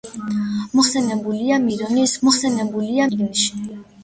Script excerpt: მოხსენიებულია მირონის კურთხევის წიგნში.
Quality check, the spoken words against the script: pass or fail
fail